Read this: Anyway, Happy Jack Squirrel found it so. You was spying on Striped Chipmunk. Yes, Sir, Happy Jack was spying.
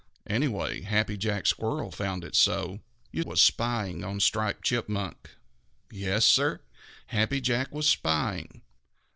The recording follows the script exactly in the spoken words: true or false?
true